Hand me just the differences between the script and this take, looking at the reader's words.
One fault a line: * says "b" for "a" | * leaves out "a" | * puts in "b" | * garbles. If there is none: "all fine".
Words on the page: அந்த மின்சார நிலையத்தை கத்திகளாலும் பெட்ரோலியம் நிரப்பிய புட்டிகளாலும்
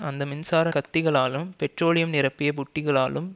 * leaves out "நிலையத்தை"